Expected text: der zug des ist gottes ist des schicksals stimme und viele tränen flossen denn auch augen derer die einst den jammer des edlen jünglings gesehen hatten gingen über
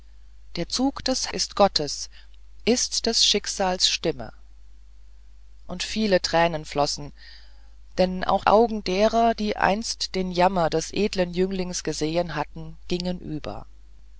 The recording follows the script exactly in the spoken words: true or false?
true